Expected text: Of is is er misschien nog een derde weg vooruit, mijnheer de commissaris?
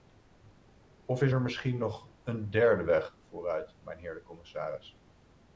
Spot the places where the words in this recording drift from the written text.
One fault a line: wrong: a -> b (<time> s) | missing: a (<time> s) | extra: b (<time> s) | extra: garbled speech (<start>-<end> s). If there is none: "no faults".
missing: is (1.3 s)